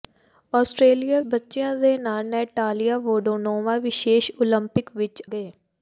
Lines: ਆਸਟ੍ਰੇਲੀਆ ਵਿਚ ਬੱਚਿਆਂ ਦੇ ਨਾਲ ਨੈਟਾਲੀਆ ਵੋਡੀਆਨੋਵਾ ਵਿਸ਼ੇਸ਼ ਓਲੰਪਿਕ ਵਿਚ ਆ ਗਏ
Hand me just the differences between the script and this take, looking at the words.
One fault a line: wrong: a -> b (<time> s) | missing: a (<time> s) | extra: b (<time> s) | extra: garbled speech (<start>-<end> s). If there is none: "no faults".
missing: ਵਿਚ (1.2 s)
missing: ਆ (5.2 s)